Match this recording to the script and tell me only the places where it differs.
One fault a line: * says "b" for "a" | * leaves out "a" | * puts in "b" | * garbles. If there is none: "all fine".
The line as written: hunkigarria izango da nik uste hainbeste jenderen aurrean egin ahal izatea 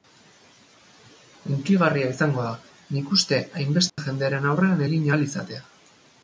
all fine